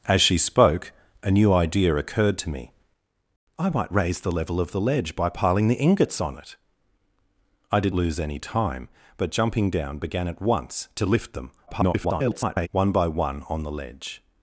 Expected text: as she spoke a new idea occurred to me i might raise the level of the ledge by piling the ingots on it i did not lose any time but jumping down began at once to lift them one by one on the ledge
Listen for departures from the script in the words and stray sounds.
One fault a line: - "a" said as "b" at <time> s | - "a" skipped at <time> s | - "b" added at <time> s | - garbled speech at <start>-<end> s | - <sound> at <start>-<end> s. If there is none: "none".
- "not" skipped at 7.9 s
- garbled speech at 11.7-12.7 s